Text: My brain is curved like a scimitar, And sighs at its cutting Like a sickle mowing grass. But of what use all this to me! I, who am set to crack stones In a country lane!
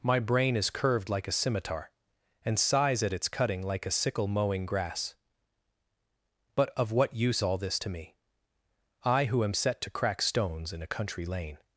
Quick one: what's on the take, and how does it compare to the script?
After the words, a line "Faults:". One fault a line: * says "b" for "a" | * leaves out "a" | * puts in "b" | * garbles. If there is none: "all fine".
My brain is curved like a scimitar, And sighs at its cutting Like a sickle mowing grass. But of what use all this to me! I, who am set to crack stones In a country lane!
Faults:
all fine